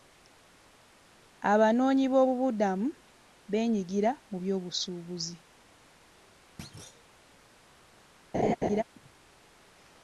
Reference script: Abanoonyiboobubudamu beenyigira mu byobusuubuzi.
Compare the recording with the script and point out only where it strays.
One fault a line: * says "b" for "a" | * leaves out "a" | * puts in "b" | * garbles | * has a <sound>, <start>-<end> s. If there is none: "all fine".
* has a thud, 6.6-7.1 s
* has a laugh, 8.3-8.8 s